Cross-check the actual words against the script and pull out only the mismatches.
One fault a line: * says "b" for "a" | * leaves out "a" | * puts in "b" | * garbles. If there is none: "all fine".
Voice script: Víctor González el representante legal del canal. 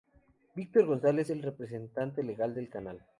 all fine